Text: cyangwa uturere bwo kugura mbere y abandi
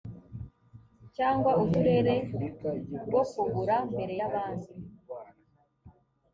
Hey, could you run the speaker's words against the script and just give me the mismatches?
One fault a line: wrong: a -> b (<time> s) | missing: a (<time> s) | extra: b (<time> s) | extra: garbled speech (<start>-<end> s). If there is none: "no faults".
no faults